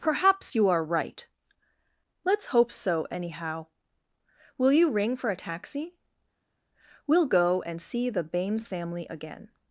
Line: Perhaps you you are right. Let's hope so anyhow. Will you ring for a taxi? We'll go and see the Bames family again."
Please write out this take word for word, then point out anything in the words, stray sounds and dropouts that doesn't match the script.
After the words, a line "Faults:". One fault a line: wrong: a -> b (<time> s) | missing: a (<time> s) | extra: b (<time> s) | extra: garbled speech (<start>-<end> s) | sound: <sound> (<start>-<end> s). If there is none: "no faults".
Perhaps you are right. Let's hope so anyhow. Will you ring for a taxi? We'll go and see the Bames family again."
Faults:
missing: you (0.7 s)